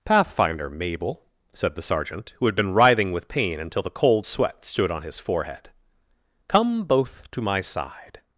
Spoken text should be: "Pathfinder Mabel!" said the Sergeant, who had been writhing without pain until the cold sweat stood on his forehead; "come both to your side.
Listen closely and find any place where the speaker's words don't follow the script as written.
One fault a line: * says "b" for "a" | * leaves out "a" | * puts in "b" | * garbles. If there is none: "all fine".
* says "with" for "without"
* says "my" for "your"